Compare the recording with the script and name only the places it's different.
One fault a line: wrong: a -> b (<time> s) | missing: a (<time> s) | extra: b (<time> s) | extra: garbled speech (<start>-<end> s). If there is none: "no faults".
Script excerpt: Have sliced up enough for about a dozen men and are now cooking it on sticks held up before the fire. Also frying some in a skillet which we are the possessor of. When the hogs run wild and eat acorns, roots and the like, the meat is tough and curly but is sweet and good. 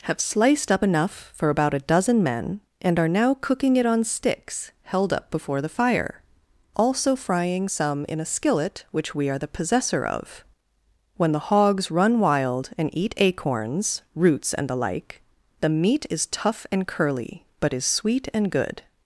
no faults